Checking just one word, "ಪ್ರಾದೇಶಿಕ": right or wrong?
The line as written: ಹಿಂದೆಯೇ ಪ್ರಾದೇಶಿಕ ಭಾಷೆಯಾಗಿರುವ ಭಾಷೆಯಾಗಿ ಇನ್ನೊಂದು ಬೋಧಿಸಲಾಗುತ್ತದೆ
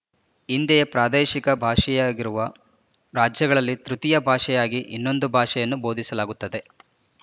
right